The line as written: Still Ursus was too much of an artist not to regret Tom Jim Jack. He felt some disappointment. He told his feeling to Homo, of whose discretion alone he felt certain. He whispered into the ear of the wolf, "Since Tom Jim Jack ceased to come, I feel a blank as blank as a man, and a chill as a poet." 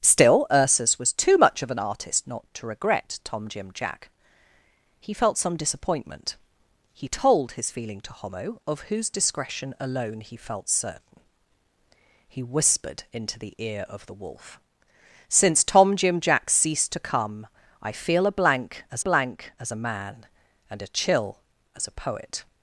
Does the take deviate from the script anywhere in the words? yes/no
no